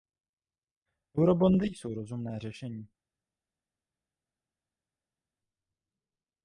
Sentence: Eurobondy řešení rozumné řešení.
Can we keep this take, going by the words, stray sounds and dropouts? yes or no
no